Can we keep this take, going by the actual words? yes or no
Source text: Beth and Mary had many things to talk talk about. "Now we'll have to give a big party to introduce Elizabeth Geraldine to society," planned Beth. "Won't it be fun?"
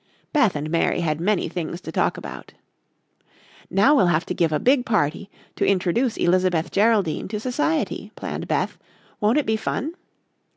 no